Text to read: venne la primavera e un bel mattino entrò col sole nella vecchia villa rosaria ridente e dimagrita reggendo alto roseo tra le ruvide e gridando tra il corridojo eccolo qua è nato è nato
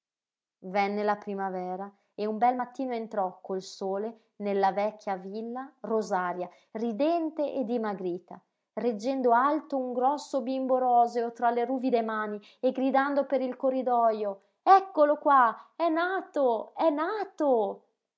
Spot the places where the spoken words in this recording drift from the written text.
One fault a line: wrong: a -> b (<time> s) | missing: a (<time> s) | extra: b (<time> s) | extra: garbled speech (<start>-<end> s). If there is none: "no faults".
extra: un grosso bimbo (9.8 s)
extra: mani (12.0 s)
wrong: tra -> per (13.2 s)